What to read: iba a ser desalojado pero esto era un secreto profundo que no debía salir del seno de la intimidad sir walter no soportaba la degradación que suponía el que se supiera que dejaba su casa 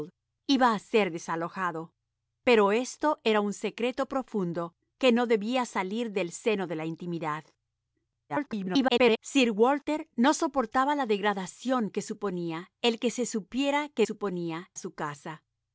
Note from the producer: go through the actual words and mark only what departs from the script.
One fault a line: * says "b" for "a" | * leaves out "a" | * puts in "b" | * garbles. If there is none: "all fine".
* garbles
* says "suponía" for "dejaba"